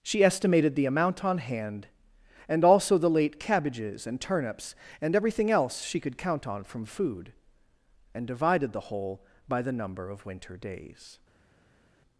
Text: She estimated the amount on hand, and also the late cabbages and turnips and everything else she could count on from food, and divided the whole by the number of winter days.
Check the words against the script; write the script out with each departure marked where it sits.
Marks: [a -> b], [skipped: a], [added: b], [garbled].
She estimated the amount on hand, and also the late cabbages and turnips and everything else she could count on from food, and divided the whole by the number of winter days.